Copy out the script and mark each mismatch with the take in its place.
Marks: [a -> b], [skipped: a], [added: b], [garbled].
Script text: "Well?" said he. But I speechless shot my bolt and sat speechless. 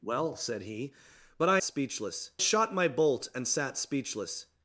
"Well?" said he. But I speechless shot my bolt and sat speechless.